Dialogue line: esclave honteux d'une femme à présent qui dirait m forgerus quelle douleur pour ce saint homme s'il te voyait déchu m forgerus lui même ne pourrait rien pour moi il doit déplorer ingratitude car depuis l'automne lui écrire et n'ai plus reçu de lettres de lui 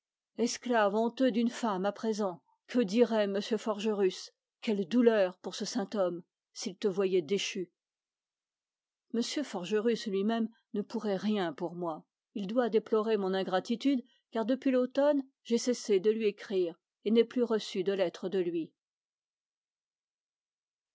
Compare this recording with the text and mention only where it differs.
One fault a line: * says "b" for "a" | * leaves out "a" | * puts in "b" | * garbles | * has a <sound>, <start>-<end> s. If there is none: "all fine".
* says "que" for "qui"
* puts in "mon"
* puts in "j'ai cessé de"